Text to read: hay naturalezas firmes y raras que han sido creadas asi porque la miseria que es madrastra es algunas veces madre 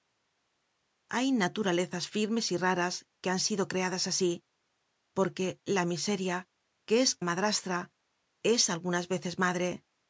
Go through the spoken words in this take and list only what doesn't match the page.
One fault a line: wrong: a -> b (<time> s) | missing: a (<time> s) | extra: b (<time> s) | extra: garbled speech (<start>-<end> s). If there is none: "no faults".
no faults